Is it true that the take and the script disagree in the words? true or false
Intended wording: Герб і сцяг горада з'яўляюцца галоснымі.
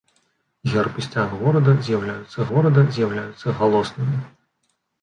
true